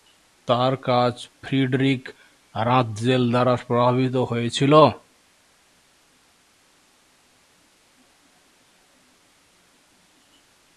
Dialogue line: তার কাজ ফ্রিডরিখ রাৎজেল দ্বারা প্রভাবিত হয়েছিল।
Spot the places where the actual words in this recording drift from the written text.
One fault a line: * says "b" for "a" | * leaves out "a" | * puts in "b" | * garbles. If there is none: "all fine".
all fine